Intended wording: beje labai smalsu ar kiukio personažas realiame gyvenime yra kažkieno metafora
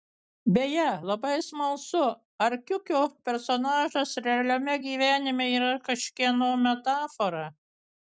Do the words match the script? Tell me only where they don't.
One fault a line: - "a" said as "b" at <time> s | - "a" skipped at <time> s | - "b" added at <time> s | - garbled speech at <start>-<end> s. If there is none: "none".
none